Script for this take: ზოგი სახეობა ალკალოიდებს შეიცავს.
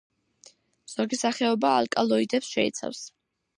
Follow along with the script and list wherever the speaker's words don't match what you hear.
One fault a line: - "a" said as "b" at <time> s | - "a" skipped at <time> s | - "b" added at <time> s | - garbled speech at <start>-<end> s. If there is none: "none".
none